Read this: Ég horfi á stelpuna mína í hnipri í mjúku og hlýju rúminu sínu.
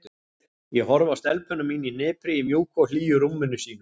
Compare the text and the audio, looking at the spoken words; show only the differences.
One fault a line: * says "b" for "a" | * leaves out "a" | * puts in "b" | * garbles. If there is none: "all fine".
all fine